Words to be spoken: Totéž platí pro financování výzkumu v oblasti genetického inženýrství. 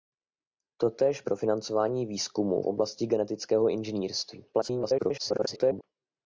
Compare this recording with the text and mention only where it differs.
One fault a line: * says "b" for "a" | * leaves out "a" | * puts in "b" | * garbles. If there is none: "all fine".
* leaves out "platí"
* leaves out "v"
* garbles